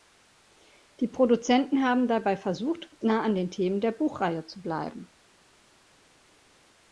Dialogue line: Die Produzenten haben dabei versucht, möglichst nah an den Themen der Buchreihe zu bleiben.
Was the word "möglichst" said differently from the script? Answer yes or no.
yes